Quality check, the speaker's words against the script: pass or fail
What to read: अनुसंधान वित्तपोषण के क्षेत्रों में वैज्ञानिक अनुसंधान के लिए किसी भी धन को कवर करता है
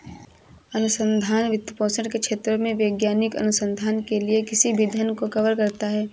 pass